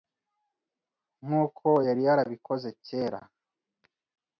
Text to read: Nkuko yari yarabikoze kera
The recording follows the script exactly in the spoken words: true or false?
true